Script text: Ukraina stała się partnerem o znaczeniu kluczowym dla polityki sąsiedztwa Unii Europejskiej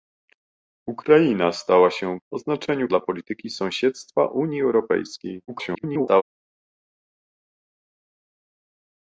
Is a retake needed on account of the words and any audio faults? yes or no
yes